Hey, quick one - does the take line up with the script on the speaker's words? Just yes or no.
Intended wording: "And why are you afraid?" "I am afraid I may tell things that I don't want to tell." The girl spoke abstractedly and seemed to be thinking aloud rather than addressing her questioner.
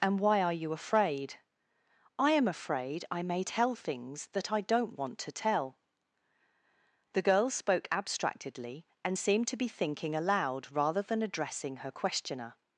yes